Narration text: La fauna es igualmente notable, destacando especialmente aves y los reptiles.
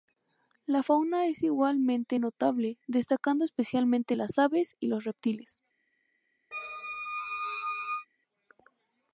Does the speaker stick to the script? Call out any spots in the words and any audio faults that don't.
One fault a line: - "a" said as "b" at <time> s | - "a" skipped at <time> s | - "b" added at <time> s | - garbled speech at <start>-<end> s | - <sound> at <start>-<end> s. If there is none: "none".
- "las" added at 4.1 s
- squeak at 6.5-8.1 s